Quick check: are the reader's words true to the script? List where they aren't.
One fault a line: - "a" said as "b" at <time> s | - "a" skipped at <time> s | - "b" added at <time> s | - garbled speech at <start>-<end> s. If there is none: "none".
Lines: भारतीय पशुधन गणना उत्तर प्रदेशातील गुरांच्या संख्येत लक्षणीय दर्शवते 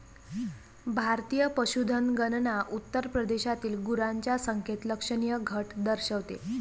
- "घट" added at 5.4 s